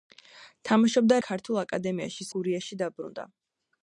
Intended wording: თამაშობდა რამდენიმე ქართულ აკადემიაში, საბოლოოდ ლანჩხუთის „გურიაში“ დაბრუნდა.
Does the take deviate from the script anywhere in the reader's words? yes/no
yes